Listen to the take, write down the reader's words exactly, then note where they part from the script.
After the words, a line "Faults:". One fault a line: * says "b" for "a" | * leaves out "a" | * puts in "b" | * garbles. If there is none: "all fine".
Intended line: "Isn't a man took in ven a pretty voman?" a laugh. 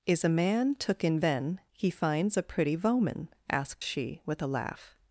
"Is a man took in ven he finds a pretty voman?" asked she, with a laugh.
Faults:
* says "Is" for "Isn't"
* puts in "he finds"
* puts in "asked she with"